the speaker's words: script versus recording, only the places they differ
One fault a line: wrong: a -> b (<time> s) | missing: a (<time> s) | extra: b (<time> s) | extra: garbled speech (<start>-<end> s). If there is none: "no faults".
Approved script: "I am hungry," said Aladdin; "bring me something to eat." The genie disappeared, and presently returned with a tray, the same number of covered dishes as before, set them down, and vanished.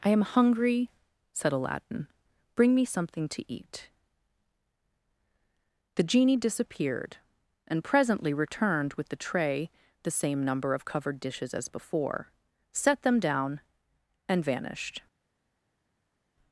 wrong: a -> the (9.1 s)